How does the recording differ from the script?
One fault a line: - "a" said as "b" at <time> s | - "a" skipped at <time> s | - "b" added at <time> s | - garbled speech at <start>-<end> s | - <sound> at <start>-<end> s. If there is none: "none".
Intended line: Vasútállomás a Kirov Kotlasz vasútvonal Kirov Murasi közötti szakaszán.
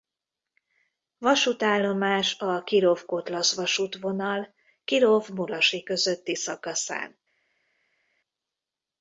none